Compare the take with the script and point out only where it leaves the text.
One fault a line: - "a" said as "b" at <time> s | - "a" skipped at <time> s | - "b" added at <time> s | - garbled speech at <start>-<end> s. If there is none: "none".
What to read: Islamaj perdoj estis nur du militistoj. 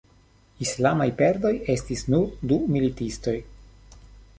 none